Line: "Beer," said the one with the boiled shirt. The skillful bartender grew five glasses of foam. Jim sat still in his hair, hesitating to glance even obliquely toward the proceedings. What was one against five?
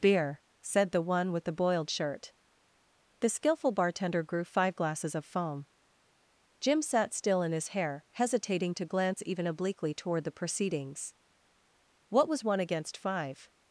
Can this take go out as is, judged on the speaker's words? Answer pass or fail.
pass